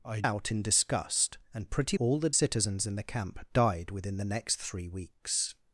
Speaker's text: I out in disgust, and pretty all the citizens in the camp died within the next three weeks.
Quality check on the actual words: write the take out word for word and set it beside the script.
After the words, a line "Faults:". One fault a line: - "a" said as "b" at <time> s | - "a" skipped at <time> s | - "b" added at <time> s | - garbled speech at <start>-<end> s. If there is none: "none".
I out in disgust, and pretty all the citizens in the camp died within the next three weeks.
Faults:
none